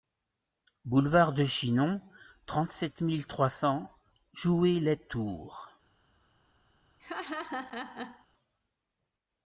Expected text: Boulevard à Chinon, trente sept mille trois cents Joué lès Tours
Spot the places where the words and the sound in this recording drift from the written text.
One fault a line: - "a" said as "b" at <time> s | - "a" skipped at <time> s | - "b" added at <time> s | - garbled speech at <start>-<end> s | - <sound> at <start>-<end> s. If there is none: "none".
- "à" said as "de" at 1.3 s
- laugh at 7.0-8.3 s